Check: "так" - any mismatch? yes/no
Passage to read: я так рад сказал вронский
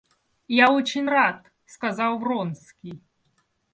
yes